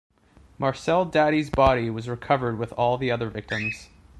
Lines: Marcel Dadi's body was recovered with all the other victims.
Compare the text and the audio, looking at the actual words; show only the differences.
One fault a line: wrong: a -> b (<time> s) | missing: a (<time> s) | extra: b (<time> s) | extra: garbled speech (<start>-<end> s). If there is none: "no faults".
no faults